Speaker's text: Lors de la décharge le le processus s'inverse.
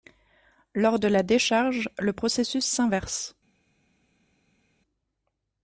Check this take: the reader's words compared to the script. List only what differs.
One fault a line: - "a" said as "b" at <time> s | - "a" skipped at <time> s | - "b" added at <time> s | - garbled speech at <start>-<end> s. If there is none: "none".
- "le" skipped at 2.1 s